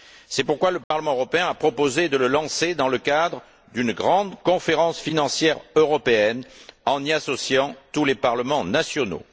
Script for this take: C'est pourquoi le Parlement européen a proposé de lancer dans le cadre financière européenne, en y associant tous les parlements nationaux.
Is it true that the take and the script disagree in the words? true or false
true